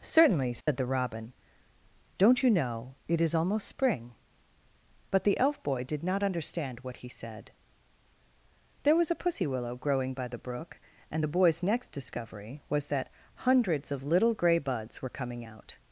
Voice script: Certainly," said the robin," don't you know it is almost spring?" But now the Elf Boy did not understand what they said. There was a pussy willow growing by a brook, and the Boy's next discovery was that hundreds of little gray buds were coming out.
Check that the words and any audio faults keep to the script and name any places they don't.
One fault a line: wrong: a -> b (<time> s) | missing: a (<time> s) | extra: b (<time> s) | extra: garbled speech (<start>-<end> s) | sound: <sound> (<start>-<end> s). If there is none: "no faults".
sound: dropout (0.6-0.7 s)
missing: now (5.2 s)
wrong: they -> he (7.0 s)
wrong: a -> the (10.3 s)